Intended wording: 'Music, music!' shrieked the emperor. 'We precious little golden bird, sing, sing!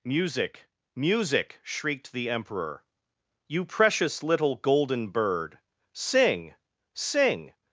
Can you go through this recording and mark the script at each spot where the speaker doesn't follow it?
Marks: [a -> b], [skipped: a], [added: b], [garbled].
'Music, music!' shrieked the emperor. ['We -> You] precious little golden bird, sing, sing!